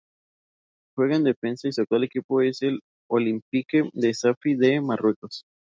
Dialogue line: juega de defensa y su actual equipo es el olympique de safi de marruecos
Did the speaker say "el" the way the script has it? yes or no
yes